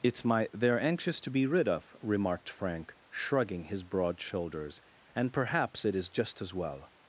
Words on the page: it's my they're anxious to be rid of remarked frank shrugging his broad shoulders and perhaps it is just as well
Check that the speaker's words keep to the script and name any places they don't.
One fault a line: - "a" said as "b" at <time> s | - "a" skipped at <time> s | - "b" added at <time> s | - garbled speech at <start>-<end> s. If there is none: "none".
none